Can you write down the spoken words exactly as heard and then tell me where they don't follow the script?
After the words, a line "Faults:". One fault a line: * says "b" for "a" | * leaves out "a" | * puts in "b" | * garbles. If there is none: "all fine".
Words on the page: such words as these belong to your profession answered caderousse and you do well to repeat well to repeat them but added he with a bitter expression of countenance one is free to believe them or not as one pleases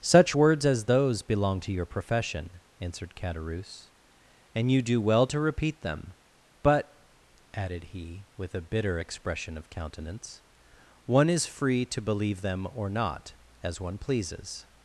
such words as those belong to your profession answered caderousse and you do well to repeat them but added he with a bitter expression of countenance one is free to believe them or not as one pleases
Faults:
* says "those" for "these"
* leaves out "well to repeat"